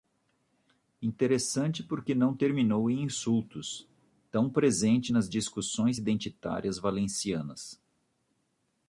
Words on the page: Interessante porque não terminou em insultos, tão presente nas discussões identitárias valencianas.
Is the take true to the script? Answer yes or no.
yes